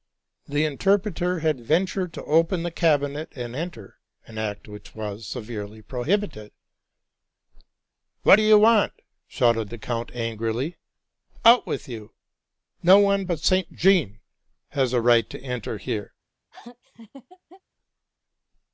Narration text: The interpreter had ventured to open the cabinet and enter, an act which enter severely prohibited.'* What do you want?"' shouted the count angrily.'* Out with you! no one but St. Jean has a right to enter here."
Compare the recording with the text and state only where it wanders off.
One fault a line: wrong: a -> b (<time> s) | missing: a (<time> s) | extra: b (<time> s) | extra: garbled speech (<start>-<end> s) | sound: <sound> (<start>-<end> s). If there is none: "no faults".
wrong: enter -> was (5.0 s)
sound: laugh (16.5-17.6 s)